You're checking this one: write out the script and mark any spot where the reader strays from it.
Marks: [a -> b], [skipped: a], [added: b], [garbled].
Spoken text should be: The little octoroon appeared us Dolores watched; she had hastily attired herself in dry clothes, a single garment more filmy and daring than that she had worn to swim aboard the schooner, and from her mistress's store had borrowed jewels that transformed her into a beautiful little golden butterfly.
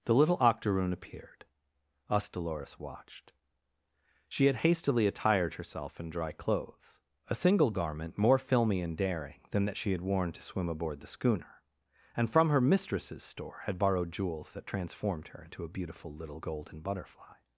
The little octoroon appeared us Dolores watched; she had hastily attired herself in dry clothes, a single garment more filmy and daring than that she had worn to swim aboard the schooner, and from her mistress's store had borrowed jewels that transformed her into a beautiful little golden butterfly.